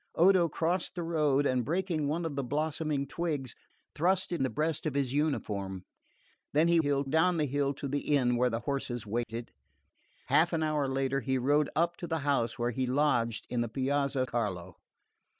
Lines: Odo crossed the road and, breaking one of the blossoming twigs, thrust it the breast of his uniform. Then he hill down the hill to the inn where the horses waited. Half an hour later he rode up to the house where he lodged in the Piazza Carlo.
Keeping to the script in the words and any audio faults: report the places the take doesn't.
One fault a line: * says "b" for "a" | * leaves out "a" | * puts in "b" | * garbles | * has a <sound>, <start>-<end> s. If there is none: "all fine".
* has a dropout, 9.2-9.3 s